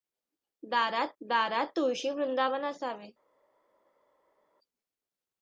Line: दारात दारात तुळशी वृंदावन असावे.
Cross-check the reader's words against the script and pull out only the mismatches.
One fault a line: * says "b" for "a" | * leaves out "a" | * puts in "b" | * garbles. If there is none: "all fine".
all fine